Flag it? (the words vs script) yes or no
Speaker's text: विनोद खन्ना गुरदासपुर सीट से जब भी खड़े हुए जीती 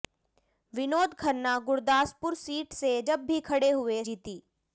no